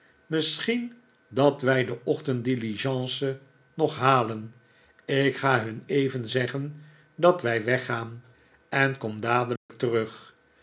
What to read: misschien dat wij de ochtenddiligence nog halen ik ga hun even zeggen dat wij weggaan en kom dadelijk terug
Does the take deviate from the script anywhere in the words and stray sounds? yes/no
yes